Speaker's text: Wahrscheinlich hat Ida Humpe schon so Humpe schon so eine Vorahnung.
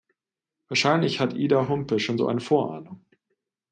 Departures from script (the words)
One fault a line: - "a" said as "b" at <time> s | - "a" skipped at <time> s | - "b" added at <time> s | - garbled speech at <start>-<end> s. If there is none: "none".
- "Humpe schon so" skipped at 2.3 s